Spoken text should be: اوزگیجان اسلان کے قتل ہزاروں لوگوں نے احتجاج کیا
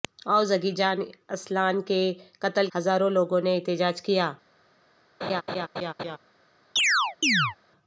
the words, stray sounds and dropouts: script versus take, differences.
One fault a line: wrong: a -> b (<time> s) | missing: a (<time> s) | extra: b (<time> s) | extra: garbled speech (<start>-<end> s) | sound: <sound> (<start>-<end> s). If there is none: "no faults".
sound: laugh (5.2-6.2 s)
sound: chirp (6.8-7.6 s)